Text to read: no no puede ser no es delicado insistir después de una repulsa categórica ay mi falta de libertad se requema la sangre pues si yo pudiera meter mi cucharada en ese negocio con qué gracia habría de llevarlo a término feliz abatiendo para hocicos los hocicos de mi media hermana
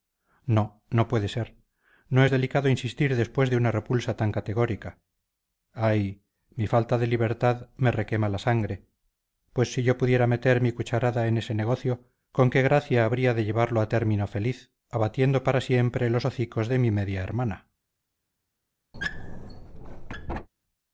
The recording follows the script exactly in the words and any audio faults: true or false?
false